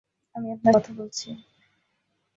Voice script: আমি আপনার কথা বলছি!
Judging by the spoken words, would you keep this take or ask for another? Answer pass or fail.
pass